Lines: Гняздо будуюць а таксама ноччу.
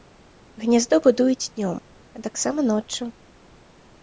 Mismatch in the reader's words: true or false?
true